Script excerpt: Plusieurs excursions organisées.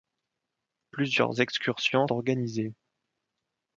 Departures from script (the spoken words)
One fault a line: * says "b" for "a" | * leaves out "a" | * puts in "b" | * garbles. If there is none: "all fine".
all fine